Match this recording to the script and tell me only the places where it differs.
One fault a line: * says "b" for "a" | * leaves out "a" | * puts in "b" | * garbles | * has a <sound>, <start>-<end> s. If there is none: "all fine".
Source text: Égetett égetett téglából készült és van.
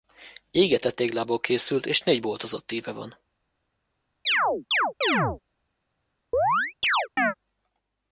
* leaves out "égetett"
* puts in "négy boltozott íve"
* has a chirp, 4.3-5.4 s
* has a chirp, 6.3-7.3 s